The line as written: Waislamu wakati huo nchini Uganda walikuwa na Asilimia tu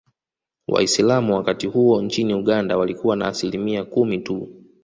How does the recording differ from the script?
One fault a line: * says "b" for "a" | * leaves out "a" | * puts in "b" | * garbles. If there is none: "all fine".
* puts in "kumi"